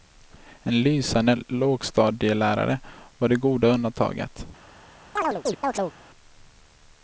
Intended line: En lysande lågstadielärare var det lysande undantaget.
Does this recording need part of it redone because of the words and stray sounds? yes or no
yes